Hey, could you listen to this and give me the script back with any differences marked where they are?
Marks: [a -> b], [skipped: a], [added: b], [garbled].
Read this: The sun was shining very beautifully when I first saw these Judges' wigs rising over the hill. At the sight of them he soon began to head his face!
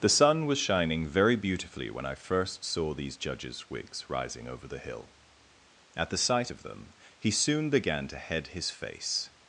The sun was shining very beautifully when I first saw these Judges' wigs rising over the hill. At the sight of them he soon began to head his face!